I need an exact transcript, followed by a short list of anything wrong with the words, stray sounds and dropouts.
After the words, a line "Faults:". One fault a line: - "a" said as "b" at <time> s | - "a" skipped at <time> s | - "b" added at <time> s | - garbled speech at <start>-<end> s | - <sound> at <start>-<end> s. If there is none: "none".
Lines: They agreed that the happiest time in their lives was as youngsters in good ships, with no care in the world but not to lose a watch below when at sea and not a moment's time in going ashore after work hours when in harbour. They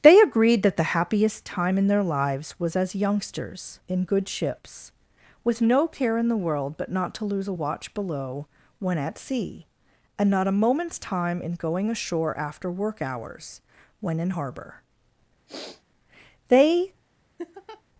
They agreed that the happiest time in their lives was as youngsters in good ships, with no care in the world but not to lose a watch below when at sea and not a moment's time in going ashore after work hours when in harbour. They
Faults:
- sniff at 15.5-15.8 s
- laugh at 17.4-17.8 s